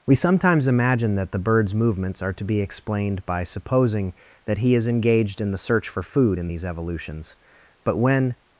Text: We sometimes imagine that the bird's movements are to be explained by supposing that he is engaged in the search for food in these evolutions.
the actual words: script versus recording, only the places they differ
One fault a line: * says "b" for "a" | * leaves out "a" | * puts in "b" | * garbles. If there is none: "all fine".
* puts in "But when"